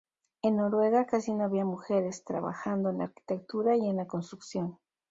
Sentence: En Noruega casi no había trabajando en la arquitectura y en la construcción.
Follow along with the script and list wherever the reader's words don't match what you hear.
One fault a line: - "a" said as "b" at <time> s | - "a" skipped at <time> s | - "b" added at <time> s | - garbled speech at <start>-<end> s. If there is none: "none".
- "mujeres" added at 1.6 s